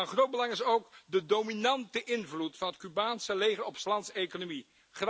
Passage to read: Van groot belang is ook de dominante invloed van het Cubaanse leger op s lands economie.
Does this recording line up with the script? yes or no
yes